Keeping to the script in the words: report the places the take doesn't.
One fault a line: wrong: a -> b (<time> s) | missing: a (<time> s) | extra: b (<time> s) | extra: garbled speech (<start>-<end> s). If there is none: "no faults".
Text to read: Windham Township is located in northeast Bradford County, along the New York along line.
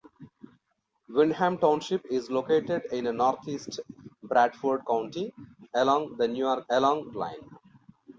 no faults